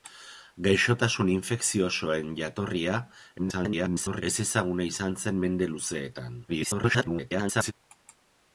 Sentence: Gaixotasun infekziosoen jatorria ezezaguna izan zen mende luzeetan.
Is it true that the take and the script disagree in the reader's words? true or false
true